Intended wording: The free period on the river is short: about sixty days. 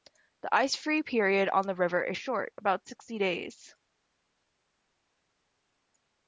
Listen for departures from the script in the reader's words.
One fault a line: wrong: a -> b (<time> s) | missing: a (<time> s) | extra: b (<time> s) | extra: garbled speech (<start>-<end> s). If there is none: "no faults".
extra: ice (0.5 s)